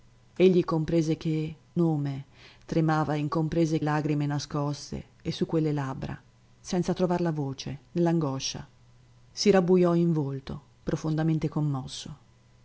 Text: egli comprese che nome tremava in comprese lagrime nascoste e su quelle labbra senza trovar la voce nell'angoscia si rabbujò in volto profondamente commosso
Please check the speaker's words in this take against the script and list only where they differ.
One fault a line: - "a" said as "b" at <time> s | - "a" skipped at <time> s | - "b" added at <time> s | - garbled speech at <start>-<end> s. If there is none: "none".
none